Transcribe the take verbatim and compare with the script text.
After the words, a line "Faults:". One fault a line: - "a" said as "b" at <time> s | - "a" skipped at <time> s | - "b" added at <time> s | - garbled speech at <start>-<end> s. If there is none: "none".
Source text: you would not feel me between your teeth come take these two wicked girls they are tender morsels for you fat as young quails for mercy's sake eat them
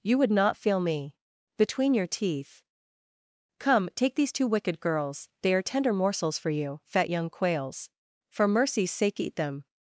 you would not feel me between your teeth come take these two wicked girls they are tender morsels for you fat young quails for mercy's sake eat them
Faults:
- "as" skipped at 7.1 s